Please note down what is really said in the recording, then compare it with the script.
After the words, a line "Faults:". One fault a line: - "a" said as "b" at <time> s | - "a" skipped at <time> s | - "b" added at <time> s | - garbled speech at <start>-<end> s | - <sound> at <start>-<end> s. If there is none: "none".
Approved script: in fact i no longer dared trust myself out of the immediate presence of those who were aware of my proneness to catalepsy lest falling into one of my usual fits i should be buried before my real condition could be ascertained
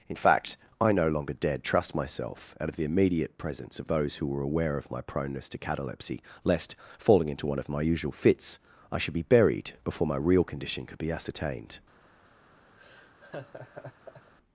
in fact i no longer dared trust myself out of the immediate presence of those who were aware of my proneness to catalepsy lest falling into one of my usual fits i should be buried before my real condition could be ascertained
Faults:
- laugh at 12.8-14.3 s